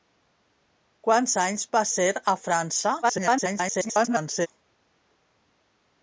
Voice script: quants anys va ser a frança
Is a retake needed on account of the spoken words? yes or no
yes